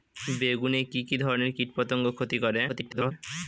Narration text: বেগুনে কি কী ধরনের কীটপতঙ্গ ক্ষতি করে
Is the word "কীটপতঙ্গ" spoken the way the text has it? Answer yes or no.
yes